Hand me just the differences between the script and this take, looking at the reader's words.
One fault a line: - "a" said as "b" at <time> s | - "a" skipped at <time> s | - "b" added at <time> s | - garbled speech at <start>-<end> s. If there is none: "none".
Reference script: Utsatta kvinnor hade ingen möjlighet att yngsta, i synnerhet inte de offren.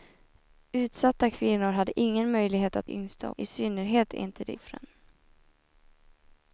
none